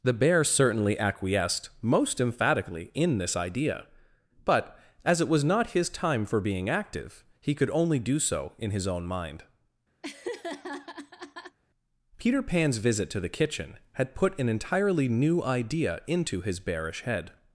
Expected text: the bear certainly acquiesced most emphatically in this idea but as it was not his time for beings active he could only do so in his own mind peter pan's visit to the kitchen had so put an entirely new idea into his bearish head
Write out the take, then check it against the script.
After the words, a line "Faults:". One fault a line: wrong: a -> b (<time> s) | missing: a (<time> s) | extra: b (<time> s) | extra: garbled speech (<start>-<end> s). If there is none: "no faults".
the bear certainly acquiesced most emphatically in this idea but as it was not his time for being active he could only do so in his own mind peter pan's visit to the kitchen had put an entirely new idea into his bearish head
Faults:
wrong: beings -> being (6.4 s)
missing: so (14.1 s)